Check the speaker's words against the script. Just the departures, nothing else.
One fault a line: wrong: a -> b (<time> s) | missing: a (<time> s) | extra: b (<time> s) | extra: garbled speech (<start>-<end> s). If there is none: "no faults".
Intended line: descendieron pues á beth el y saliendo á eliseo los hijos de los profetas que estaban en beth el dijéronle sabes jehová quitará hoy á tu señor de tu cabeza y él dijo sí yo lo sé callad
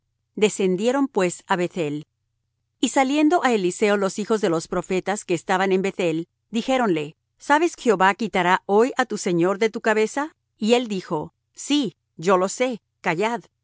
no faults